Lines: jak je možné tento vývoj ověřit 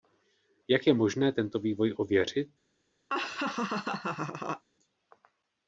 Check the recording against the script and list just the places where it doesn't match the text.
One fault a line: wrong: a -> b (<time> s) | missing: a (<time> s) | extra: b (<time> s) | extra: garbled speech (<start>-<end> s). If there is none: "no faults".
no faults